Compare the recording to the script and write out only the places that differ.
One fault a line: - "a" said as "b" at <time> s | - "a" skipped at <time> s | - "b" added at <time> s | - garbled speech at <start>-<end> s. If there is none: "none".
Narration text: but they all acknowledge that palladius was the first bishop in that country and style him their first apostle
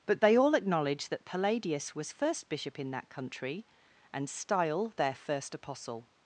- "the" skipped at 2.1 s
- "him" skipped at 4.9 s